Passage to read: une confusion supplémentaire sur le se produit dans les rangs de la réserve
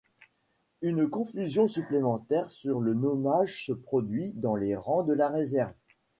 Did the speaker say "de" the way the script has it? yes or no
yes